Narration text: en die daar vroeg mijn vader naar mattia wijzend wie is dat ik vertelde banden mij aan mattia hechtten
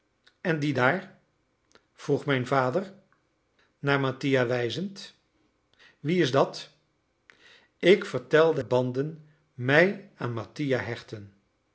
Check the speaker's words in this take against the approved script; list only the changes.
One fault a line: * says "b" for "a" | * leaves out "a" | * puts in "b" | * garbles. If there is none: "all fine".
all fine